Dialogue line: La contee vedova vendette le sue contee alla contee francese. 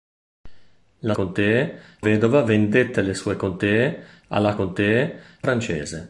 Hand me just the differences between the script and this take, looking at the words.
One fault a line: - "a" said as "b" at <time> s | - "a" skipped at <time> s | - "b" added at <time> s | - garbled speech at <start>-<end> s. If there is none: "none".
none